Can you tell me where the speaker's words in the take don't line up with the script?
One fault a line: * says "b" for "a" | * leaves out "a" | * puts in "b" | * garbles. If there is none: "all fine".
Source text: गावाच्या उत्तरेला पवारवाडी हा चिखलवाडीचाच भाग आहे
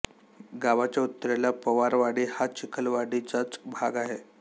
all fine